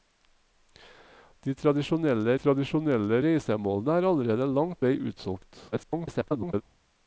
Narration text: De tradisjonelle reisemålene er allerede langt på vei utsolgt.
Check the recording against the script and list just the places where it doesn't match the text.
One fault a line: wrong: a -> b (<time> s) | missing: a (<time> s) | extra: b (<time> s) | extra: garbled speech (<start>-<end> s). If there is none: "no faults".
extra: tradisjonelle (2.4 s)
missing: på (4.8 s)
extra: garbled speech (5.7-6.6 s)